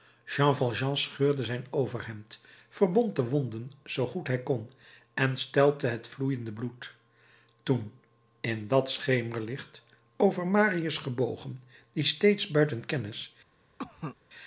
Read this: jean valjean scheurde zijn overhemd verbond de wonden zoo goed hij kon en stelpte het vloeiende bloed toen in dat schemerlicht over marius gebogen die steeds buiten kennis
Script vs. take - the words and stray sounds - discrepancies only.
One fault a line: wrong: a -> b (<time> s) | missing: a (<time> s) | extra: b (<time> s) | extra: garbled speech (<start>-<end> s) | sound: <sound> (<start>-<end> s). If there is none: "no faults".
sound: cough (13.8-14.2 s)